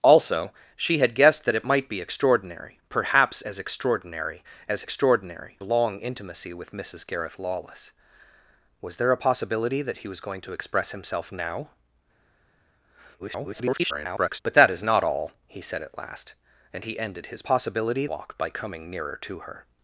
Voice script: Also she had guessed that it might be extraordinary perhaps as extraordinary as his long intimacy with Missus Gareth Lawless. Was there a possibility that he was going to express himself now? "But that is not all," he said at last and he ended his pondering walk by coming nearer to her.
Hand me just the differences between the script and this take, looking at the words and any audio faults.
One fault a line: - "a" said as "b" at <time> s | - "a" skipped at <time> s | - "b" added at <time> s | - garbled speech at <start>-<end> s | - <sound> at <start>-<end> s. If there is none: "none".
- "his" said as "extraordinary" at 4.8 s
- garbled speech at 13.2-14.4 s
- "pondering" said as "possibility" at 17.4 s